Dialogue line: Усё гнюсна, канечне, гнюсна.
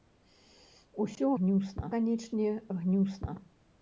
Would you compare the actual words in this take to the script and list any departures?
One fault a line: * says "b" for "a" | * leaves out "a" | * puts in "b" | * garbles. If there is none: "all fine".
all fine